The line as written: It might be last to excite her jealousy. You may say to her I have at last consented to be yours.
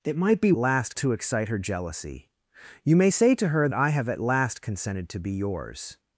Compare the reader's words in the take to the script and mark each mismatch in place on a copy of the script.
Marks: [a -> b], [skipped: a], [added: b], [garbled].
It might be last to excite her jealousy. You may say to her I have at last consented to be yours.